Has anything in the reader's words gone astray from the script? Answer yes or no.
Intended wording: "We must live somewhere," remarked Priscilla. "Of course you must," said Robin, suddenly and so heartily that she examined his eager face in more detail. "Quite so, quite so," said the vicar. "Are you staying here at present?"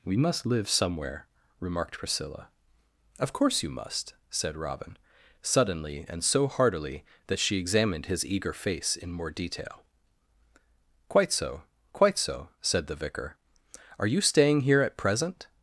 no